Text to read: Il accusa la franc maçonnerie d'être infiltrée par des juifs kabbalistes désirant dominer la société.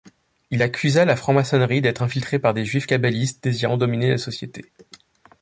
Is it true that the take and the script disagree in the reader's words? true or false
false